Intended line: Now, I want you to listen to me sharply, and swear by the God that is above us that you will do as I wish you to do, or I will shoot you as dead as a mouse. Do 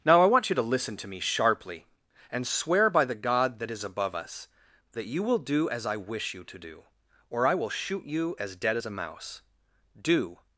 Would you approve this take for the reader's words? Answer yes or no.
yes